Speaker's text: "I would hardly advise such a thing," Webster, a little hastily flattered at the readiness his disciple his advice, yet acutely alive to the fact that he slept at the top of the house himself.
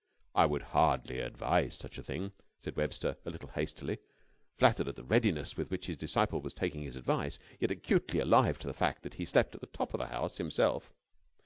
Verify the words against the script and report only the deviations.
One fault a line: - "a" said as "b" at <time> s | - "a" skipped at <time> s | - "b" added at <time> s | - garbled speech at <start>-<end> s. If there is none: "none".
- "said" added at 2.6 s
- "with which" added at 5.5 s
- "was taking" added at 6.4 s